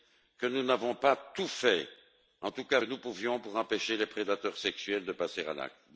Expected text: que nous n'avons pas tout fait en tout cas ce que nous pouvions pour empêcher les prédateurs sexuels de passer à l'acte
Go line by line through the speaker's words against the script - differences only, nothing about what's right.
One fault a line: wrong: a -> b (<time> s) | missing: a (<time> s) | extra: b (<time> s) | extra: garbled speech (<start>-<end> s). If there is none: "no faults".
missing: ce (2.8 s)